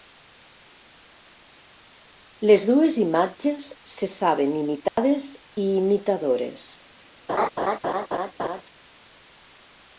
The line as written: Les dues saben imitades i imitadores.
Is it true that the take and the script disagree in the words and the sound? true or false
true